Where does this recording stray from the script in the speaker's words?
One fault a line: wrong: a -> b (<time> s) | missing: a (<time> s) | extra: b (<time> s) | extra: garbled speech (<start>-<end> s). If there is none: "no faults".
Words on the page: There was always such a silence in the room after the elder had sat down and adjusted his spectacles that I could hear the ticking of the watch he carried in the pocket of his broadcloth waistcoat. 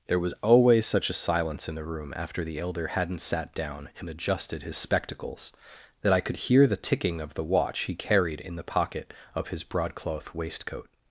wrong: had -> hadn't (2.9 s)